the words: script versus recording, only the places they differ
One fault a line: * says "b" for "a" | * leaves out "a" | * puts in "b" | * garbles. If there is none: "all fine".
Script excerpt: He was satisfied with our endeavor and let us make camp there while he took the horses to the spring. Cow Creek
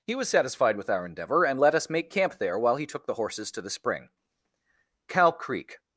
all fine